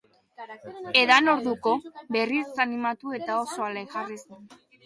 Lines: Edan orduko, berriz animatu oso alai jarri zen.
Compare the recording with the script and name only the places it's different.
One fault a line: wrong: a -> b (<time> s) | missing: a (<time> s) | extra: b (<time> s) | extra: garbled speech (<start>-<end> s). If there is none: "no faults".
extra: eta (3.2 s)